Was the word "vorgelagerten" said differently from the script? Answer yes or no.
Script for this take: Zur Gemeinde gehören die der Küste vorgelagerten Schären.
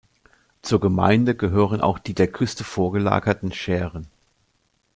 no